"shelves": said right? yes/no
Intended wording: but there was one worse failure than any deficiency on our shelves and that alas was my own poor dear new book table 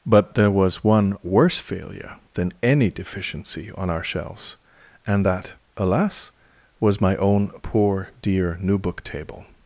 yes